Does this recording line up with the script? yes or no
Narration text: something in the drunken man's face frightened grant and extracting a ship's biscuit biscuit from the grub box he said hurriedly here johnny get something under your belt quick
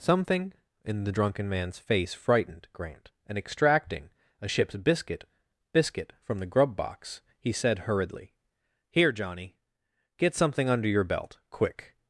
yes